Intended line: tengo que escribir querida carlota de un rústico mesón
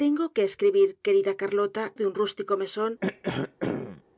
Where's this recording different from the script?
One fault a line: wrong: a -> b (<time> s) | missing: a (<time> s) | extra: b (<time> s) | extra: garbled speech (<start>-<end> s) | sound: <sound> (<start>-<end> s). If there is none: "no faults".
sound: throat clearing (3.0-4.0 s)